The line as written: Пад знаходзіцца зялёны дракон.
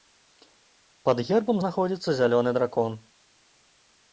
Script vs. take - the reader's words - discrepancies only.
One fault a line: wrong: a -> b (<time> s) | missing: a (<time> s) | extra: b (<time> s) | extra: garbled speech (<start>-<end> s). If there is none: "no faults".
extra: гербам (1.3 s)